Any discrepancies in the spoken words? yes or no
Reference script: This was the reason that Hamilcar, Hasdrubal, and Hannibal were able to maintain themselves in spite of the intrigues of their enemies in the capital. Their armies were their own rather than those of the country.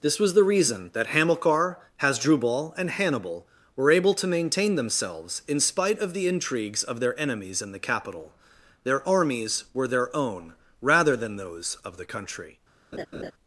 no